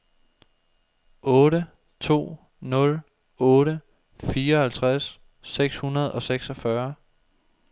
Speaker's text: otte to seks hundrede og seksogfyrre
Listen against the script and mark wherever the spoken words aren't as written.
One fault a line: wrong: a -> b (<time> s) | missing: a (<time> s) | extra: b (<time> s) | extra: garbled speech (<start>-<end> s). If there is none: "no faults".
extra: nul otte fireoghalvtreds (2.6 s)